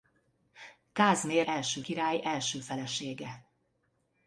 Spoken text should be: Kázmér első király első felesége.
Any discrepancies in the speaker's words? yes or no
no